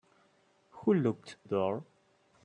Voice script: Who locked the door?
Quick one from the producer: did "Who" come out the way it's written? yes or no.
yes